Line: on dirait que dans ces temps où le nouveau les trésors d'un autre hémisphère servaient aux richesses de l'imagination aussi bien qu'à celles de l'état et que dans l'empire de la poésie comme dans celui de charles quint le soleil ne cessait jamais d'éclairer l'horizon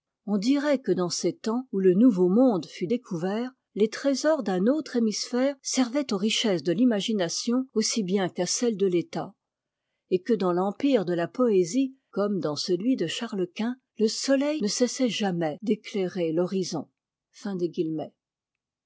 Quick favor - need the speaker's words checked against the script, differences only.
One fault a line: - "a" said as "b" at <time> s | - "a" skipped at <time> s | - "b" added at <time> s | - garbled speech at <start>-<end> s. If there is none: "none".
- "monde fut découvert" added at 2.3 s